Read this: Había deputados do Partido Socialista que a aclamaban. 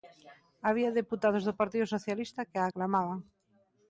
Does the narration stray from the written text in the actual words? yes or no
no